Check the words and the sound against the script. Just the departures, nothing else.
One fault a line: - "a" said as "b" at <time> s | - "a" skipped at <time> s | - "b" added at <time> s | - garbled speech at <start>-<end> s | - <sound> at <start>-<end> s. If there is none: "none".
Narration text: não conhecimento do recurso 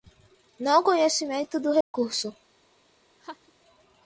- dropout at 1.8-1.9 s
- laugh at 3.2-3.5 s